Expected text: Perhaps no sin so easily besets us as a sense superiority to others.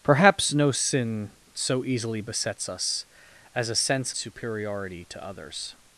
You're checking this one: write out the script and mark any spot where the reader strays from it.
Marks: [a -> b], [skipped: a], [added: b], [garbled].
Perhaps no sin so easily besets us as a sense superiority to others.